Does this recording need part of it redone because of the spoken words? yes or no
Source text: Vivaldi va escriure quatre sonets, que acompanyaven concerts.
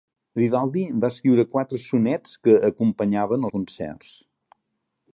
no